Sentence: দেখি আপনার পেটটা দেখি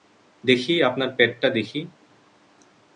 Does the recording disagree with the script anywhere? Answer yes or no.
no